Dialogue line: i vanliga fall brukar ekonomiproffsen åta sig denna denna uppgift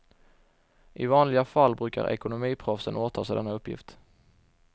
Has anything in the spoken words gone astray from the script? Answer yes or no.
yes